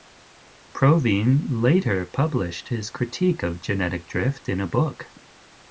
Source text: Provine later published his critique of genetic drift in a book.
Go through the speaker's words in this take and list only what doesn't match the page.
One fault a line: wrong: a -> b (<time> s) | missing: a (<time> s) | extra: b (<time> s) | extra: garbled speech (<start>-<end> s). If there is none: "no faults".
no faults